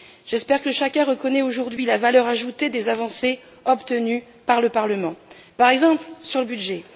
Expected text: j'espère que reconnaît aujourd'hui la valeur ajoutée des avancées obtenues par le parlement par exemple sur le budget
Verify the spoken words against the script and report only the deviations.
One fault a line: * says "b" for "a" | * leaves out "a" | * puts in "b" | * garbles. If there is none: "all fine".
* puts in "chacun"